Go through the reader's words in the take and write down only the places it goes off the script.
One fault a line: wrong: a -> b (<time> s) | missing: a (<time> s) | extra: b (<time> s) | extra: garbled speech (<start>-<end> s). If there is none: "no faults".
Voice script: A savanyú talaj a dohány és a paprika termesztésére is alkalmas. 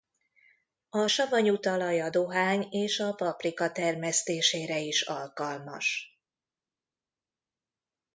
no faults